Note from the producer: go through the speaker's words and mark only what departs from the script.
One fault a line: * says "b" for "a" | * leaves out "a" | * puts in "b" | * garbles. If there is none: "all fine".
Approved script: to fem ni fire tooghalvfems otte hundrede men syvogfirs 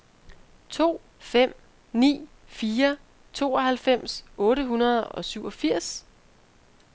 * says "og" for "men"